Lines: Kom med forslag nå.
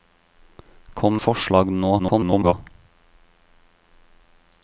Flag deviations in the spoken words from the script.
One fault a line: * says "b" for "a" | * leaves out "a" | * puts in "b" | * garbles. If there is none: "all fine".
* leaves out "med"
* garbles